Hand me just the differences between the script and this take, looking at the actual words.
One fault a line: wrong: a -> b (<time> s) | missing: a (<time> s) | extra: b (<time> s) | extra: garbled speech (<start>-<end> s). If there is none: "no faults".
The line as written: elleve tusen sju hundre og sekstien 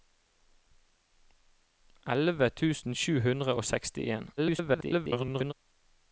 extra: garbled speech (4.4-5.5 s)